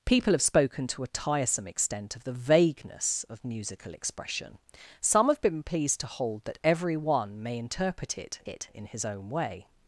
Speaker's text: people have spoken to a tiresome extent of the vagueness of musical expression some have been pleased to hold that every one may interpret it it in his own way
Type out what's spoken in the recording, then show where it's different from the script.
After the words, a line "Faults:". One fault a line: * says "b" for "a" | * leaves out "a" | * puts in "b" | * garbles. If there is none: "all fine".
people have spoken to a tiresome extent of the vagueness of musical expression some have been pleased to hold that every one may interpret it it in his own way
Faults:
all fine